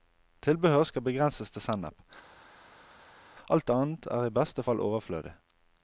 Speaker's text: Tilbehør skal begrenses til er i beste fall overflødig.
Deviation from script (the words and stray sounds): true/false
true